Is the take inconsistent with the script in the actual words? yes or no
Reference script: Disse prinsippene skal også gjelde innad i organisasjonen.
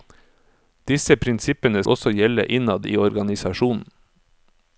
yes